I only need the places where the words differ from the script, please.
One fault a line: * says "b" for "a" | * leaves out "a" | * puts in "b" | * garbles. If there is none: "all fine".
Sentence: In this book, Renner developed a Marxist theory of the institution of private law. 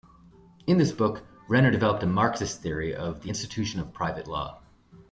all fine